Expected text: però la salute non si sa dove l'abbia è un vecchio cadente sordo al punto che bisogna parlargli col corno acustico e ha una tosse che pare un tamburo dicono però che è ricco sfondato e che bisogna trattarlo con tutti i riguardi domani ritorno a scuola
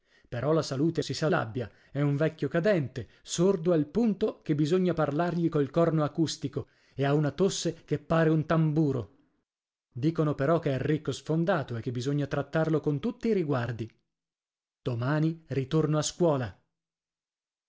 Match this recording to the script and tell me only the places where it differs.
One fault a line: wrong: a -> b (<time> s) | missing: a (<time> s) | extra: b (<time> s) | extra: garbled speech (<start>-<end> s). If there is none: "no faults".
missing: non (1.0 s)
missing: dove (1.3 s)